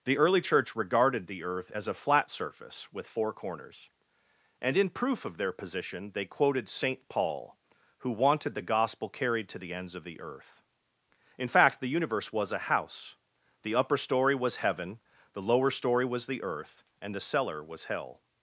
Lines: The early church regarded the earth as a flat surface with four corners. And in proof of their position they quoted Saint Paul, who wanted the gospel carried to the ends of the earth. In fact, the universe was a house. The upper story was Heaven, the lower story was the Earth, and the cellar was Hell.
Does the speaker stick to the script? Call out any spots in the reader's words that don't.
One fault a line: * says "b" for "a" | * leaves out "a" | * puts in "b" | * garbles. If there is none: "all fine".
all fine